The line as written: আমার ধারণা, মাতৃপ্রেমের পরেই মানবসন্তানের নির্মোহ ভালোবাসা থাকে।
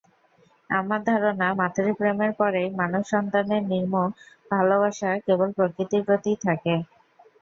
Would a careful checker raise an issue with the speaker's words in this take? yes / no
yes